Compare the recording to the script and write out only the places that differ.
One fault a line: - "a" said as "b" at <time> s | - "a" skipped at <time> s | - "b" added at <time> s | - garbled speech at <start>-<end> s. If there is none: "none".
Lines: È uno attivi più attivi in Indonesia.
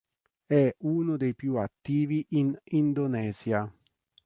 - "attivi" said as "dei" at 1.2 s